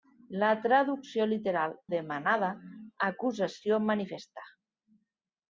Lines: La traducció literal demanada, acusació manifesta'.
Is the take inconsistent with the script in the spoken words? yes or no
no